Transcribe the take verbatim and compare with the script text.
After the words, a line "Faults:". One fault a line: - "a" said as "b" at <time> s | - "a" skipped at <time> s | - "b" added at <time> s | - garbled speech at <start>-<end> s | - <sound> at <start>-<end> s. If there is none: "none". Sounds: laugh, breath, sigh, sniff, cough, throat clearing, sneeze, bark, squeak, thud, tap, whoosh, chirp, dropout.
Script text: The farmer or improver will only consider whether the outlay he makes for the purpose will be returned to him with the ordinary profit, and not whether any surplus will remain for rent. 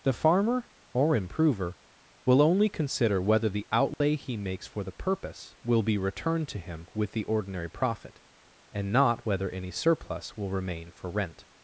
The farmer or improver will only consider whether the outlay he makes for the purpose will be returned to him with the ordinary profit, and not whether any surplus will remain for rent.
Faults:
- dropout at 3.9-4.0 s